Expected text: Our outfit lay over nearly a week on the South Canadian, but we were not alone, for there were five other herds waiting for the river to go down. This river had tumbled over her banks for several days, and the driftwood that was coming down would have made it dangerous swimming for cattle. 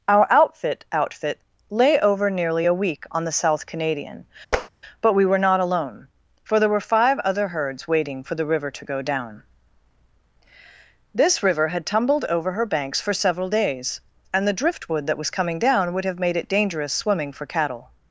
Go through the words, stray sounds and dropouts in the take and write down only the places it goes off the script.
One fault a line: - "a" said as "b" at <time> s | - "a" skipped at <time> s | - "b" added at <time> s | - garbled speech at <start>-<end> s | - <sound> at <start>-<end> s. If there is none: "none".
- "outfit" added at 0.9 s
- tap at 4.5-4.7 s